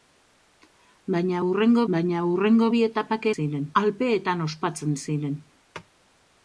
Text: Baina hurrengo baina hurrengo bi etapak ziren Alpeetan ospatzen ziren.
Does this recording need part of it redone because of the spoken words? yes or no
no